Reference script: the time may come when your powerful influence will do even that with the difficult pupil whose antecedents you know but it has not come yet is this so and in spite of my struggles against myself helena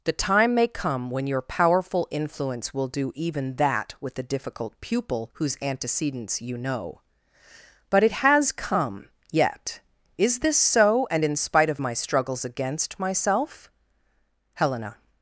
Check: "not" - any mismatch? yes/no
yes